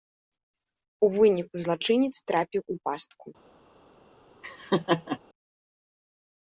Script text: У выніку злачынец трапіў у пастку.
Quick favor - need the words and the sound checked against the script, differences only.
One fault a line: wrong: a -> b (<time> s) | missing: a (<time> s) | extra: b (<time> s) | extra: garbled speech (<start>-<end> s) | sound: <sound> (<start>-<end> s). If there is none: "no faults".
sound: laugh (4.4-5.2 s)